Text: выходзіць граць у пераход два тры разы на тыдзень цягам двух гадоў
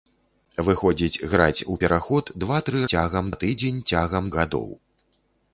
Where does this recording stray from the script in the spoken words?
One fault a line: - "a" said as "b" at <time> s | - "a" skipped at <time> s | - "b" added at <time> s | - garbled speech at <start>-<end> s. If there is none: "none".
- "разы" said as "цягам" at 2.9 s
- "двух" skipped at 4.3 s